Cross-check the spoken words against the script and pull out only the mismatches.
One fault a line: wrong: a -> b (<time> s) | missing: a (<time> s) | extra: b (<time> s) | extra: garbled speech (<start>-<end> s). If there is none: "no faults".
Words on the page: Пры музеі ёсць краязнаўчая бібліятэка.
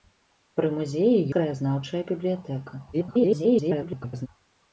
missing: ёсць (1.2 s)
extra: garbled speech (2.9-4.3 s)